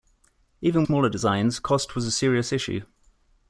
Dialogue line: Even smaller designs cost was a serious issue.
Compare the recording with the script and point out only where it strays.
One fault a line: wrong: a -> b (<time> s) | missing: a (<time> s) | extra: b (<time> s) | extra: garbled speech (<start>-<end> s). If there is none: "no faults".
no faults